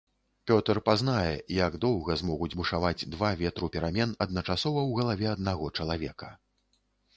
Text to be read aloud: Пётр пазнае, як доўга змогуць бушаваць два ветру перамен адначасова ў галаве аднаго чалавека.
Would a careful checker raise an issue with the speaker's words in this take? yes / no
no